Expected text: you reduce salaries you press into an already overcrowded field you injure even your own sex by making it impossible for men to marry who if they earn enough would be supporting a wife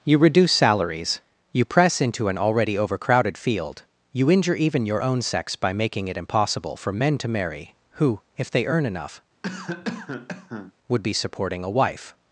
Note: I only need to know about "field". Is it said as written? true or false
true